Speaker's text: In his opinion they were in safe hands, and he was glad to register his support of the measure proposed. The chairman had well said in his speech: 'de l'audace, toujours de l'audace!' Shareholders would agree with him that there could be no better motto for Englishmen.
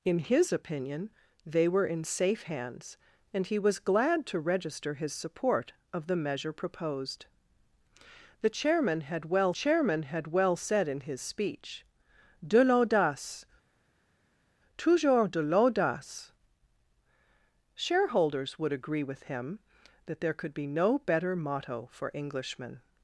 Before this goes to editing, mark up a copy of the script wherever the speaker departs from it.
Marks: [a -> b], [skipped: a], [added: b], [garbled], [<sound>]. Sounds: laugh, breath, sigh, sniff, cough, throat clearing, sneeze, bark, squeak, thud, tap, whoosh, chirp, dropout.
In his opinion they were in safe hands, and he was glad to register his support of the measure proposed. The chairman had well [added: chairman had well] said in his speech: 'de l'audace, toujours de l'audace!' Shareholders would agree with him that there could be no better motto for Englishmen.